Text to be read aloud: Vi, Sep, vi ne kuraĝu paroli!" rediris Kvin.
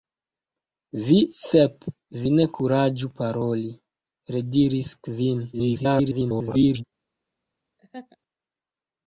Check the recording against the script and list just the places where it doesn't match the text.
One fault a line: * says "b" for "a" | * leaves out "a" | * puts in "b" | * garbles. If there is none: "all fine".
* garbles